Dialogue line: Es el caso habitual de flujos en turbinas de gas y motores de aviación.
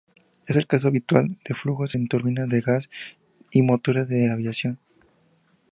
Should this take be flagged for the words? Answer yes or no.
no